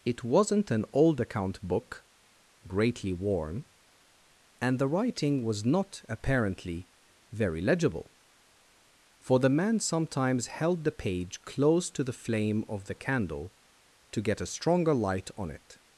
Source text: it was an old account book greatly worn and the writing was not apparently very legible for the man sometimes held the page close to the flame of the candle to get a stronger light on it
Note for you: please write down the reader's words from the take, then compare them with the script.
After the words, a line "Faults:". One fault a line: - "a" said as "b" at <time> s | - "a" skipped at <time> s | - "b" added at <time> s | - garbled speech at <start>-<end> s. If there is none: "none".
it wasn't an old account book greatly worn and the writing was not apparently very legible for the man sometimes held the page close to the flame of the candle to get a stronger light on it
Faults:
- "was" said as "wasn't" at 0.2 s